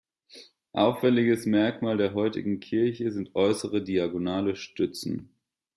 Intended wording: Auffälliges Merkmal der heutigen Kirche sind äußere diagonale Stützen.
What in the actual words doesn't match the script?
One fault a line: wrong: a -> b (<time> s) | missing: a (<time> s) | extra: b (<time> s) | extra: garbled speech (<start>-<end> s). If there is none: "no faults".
no faults